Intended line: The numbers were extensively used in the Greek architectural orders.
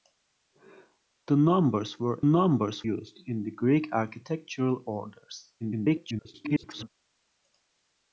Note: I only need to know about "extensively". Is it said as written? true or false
false